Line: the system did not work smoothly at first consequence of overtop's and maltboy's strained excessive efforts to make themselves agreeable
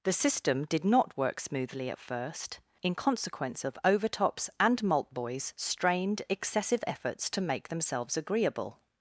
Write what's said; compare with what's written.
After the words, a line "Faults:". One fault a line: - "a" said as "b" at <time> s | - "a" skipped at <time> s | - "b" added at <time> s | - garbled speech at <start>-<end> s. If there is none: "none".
the system did not work smoothly at first in consequence of overtop's and maltboy's strained excessive efforts to make themselves agreeable
Faults:
- "in" added at 2.8 s